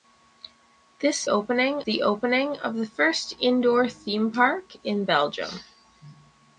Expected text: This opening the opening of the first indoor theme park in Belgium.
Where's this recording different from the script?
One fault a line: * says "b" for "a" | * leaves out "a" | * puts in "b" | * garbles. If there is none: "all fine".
all fine